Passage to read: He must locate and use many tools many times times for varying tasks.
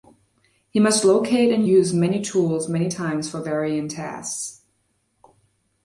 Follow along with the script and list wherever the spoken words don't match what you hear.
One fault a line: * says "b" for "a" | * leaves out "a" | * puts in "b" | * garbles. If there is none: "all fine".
* leaves out "times"